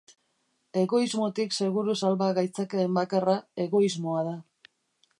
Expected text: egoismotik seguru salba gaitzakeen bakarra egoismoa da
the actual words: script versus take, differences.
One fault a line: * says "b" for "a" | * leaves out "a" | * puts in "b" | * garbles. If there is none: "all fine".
all fine